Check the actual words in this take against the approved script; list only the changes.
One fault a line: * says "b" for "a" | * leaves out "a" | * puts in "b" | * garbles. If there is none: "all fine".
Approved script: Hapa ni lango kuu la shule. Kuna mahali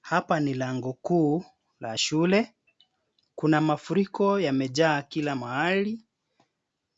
* puts in "mafuriko yamejaa kila"